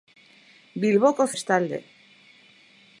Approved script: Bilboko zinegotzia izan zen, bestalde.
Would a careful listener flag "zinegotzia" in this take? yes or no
yes